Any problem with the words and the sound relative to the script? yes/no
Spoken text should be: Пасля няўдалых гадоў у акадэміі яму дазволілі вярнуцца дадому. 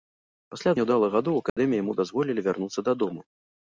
yes